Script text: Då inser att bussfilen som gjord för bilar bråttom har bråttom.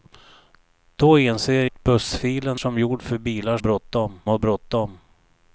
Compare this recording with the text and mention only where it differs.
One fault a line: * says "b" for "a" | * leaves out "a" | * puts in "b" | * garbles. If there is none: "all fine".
all fine